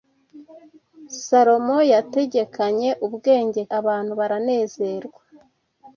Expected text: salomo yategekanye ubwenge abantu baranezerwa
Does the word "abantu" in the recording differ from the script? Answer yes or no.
no